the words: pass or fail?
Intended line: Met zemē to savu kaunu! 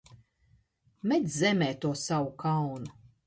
pass